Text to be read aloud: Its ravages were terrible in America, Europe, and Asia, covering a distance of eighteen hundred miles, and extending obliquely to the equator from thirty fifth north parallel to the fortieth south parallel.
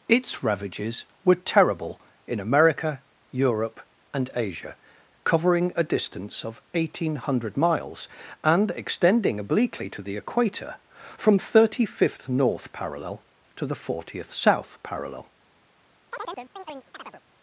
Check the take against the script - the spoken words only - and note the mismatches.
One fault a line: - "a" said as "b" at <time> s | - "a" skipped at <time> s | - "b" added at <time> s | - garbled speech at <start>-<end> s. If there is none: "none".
none